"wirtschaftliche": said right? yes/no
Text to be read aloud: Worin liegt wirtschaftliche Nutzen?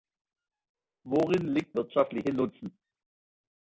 yes